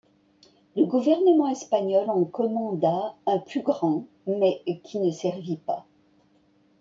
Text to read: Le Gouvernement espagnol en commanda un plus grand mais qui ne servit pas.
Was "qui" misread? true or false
false